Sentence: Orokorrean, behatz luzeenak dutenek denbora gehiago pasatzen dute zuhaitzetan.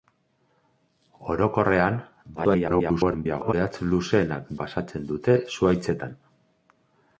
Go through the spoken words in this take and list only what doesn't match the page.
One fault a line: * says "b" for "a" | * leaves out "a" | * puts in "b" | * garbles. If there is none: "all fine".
* garbles
* leaves out "dutenek denbora gehiago"